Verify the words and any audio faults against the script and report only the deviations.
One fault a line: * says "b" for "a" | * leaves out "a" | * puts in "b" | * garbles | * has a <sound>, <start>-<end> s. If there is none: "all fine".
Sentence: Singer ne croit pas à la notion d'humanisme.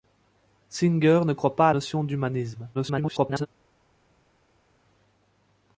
* leaves out "la"
* garbles